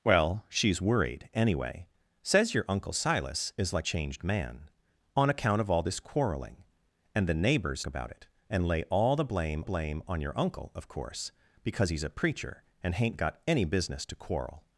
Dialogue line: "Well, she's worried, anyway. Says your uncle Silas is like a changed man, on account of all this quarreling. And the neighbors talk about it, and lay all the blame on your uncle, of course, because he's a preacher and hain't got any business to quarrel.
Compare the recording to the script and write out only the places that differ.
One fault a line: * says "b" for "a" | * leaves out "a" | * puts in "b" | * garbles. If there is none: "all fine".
* leaves out "a"
* leaves out "talk"
* puts in "blame"